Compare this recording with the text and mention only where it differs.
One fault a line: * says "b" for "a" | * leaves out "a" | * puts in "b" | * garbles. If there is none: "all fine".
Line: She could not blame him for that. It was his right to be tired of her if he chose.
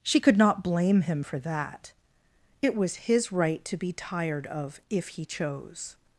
* leaves out "her"